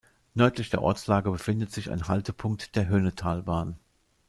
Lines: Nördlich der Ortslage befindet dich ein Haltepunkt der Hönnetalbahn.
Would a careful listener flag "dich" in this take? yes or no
yes